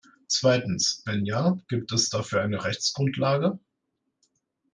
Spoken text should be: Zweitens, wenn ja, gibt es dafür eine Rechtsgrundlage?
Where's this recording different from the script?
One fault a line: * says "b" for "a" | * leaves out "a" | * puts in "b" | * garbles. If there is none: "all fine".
all fine